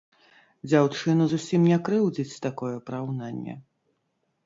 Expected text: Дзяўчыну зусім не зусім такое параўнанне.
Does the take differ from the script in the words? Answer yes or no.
yes